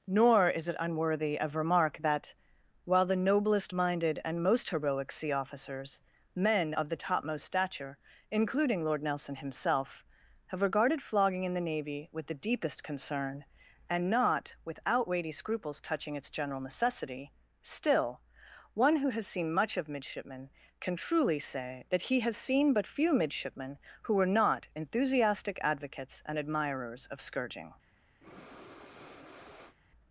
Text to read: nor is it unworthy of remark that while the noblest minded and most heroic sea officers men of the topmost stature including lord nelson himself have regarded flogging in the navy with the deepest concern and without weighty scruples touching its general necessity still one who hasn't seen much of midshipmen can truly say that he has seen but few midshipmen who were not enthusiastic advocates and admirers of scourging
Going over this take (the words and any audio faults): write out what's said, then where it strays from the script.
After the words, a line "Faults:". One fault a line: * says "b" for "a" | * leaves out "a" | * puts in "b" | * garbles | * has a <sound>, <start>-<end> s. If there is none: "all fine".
nor is it unworthy of remark that while the noblest minded and most heroic sea officers men of the topmost stature including lord nelson himself have regarded flogging in the navy with the deepest concern and not without weighty scruples touching its general necessity still one who has seen much of midshipmen can truly say that he has seen but few midshipmen who were not enthusiastic advocates and admirers of scourging
Faults:
* puts in "not"
* says "has" for "hasn't"
* has a breath, 28.2-29.8 s